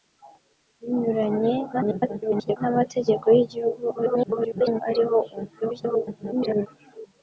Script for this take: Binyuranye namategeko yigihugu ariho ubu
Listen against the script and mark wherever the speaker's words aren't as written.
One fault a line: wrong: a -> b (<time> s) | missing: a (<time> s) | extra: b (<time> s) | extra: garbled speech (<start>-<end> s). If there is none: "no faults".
extra: garbled speech (1.7-2.6 s)
extra: garbled speech (3.9-4.8 s)
extra: garbled speech (5.6-6.7 s)